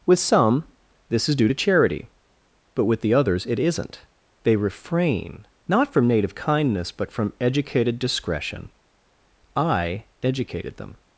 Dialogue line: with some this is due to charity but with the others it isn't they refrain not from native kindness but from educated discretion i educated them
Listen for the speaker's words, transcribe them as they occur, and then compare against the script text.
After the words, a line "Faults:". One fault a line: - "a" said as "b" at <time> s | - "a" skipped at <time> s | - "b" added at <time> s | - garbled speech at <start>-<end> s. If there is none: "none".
with some this is due to charity but with the others it isn't they refrain not from native kindness but from educated discretion i educated them
Faults:
none